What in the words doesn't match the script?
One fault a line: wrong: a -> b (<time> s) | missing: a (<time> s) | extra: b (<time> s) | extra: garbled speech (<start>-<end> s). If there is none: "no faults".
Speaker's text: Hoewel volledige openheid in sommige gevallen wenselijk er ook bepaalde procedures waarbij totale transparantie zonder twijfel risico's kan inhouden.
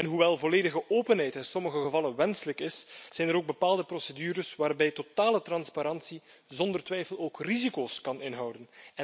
extra: is zijn (2.6 s)
extra: ook (7.2 s)